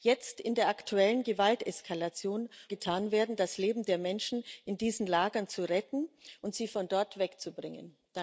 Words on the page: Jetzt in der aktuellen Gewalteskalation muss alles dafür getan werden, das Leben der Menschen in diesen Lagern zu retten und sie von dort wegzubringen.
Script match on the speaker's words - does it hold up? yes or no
no